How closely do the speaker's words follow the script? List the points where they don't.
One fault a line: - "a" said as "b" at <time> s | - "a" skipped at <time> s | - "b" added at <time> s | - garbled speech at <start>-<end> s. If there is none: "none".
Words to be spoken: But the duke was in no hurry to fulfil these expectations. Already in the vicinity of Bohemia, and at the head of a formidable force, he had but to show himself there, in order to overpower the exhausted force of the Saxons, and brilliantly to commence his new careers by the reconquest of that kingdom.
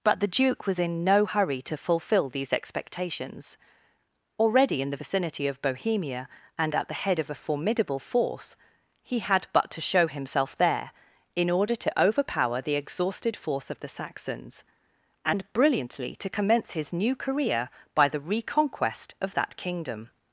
- "careers" said as "career" at 17.2 s